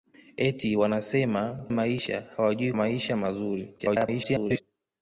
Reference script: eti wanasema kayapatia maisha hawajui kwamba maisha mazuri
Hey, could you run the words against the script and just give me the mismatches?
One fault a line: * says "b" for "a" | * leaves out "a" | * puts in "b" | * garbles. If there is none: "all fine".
* leaves out "kayapatia"
* leaves out "kwamba"
* garbles